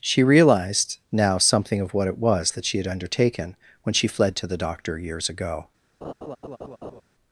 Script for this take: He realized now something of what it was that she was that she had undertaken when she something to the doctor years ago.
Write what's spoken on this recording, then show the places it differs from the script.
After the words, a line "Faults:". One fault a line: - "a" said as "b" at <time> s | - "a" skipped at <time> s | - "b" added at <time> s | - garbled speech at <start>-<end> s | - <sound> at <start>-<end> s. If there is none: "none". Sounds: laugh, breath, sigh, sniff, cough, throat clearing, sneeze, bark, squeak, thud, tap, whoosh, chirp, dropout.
She realized now something of what it was that she had undertaken when she fled to the doctor years ago.
Faults:
- "He" said as "She" at 0.0 s
- "was that she" skipped at 2.8 s
- "something" said as "fled" at 4.1 s
- laugh at 6.0-7.0 s